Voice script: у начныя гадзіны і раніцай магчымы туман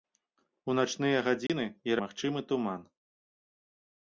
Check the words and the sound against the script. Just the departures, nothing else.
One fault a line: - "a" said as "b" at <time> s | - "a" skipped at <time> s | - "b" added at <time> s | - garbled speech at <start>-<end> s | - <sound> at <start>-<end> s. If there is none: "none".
- dropout at 1.5-1.5 s
- "раніцай" skipped at 2.0 s